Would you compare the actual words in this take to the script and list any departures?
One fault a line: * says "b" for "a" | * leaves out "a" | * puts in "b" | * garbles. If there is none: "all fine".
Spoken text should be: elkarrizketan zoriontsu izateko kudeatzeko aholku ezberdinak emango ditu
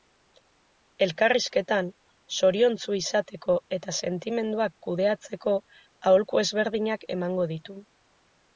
* puts in "eta sentimenduak"